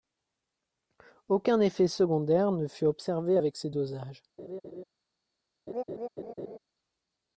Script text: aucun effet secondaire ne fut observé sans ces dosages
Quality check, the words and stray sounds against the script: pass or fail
fail